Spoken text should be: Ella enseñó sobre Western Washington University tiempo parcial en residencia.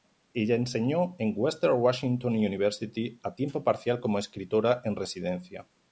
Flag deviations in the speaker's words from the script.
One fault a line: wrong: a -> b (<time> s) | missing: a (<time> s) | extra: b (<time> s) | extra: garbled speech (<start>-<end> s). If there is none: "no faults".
wrong: sobre -> en (1.2 s)
extra: a (3.2 s)
extra: como escritora (4.0 s)